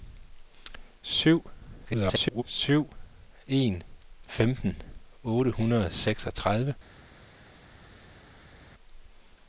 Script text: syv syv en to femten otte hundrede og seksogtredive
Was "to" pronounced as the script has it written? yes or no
no